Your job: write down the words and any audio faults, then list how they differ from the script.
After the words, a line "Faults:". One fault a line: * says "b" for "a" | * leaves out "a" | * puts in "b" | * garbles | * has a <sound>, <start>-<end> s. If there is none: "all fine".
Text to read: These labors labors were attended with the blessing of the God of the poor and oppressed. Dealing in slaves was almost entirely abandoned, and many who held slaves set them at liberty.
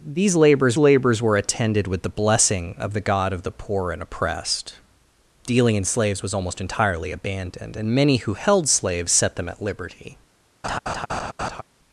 These labors labors were attended with the blessing of the God of the poor and oppressed. Dealing in slaves was almost entirely abandoned, and many who held slaves set them at liberty.
Faults:
* has a laugh, 10.6-11.6 s